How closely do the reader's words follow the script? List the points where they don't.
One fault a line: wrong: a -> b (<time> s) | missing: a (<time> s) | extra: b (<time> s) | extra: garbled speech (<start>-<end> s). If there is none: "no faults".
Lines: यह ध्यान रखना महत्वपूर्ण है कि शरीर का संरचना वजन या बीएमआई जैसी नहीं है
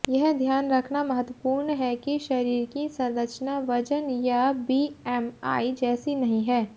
wrong: का -> की (2.7 s)